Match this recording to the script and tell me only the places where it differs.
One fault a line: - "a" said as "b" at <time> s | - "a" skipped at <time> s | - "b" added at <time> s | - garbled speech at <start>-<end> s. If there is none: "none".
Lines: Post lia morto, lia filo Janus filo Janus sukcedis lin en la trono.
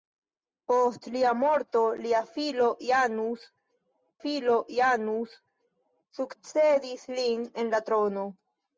none